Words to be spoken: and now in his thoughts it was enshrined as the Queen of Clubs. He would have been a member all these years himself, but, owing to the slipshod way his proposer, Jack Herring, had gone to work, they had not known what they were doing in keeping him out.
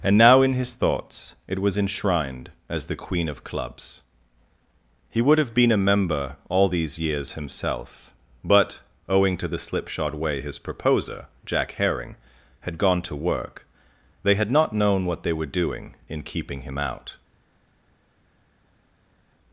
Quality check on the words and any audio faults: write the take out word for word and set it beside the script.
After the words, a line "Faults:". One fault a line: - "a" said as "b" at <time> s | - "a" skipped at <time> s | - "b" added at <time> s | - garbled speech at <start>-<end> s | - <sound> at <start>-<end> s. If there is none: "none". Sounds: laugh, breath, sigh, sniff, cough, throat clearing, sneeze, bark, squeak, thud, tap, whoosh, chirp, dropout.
and now in his thoughts it was enshrined as the Queen of Clubs. He would have been a member all these years himself, but, owing to the slipshod way his proposer, Jack Herring, had gone to work, they had not known what they were doing in keeping him out.
Faults:
none